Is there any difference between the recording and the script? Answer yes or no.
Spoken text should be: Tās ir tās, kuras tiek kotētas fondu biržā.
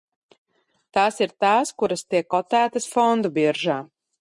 no